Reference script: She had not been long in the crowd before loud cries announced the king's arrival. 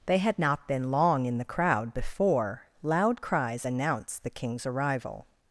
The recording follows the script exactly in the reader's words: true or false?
false